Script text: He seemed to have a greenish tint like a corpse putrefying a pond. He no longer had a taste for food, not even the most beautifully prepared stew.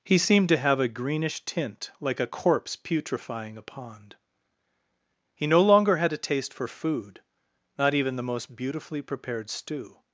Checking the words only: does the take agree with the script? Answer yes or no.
yes